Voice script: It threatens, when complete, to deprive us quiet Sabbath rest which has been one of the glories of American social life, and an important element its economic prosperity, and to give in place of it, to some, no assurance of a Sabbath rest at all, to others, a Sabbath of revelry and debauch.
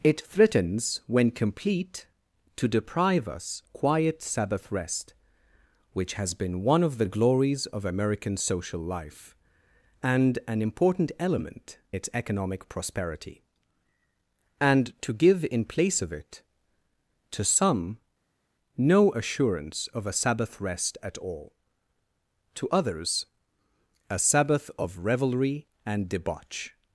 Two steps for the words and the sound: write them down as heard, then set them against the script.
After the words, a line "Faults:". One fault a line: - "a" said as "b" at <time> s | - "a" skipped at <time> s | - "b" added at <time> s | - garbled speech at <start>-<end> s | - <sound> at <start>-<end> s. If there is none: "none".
It threatens, when complete, to deprive us quiet Sabbath rest which has been one of the glories of American social life, and an important element its economic prosperity, and to give in place of it, to some, no assurance of a Sabbath rest at all, to others, a Sabbath of revelry and debauch.
Faults:
none